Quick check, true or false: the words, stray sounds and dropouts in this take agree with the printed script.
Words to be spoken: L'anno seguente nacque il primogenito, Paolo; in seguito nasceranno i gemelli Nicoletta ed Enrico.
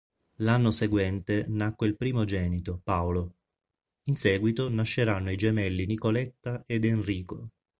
true